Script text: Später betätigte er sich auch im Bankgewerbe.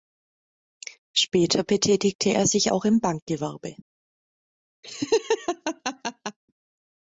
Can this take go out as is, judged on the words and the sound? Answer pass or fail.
fail